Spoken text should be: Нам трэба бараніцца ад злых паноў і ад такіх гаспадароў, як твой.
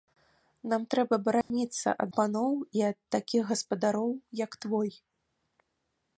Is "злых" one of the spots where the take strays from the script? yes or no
yes